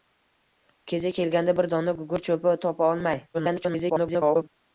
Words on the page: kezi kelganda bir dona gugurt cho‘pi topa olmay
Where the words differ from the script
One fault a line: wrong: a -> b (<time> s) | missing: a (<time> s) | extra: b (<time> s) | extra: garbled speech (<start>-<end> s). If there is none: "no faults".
extra: garbled speech (3.3-4.5 s)